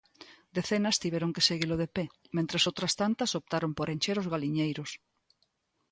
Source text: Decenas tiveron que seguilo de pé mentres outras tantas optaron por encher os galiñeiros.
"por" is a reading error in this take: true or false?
false